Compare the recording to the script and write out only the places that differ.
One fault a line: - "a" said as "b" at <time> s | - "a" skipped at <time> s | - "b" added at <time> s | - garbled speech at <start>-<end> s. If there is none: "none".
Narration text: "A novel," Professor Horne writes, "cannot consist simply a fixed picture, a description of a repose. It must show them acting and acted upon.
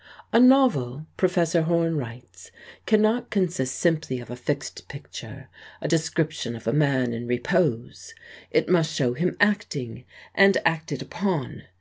- "of" added at 4.2 s
- "man in" added at 6.7 s
- "them" said as "him" at 9.1 s